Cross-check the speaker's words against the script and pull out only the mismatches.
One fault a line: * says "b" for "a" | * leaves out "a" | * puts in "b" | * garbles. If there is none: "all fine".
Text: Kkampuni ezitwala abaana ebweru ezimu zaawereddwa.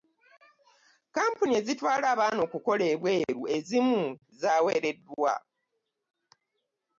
* puts in "okukola"